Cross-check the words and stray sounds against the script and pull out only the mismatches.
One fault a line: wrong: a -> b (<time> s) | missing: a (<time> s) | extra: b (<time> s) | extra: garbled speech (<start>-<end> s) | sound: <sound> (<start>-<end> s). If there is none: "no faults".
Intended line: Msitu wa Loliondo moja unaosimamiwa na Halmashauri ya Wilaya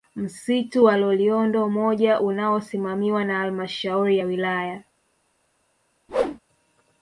sound: whoosh (6.1-6.4 s)